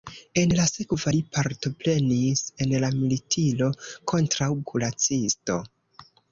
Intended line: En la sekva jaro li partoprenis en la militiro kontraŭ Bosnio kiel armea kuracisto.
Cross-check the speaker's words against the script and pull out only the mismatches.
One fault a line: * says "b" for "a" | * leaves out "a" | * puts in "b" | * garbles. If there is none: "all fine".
* leaves out "jaro"
* leaves out "Bosnio kiel armea"